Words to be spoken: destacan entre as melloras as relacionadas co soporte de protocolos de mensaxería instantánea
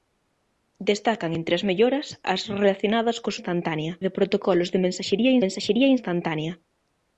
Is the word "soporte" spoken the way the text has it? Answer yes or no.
no